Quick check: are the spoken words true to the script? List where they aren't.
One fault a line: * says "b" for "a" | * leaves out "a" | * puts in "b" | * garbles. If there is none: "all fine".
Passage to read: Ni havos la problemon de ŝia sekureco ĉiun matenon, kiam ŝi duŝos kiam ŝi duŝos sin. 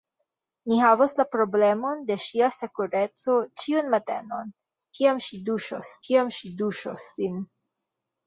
all fine